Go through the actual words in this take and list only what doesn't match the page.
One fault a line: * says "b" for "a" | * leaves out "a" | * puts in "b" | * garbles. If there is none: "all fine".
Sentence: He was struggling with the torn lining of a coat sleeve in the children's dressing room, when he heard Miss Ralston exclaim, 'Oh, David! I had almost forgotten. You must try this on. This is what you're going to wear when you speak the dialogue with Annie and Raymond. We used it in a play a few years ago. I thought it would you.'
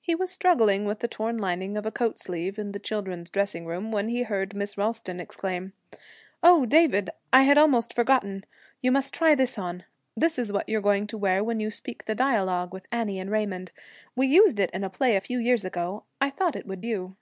all fine